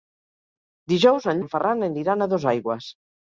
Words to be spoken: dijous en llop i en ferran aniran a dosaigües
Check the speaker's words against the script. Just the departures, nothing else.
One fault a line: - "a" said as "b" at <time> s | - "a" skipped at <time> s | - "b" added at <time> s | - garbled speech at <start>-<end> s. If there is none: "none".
- "llop" skipped at 1.4 s